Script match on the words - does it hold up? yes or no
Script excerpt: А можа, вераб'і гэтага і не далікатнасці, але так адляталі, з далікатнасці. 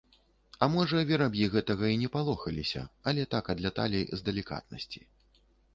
no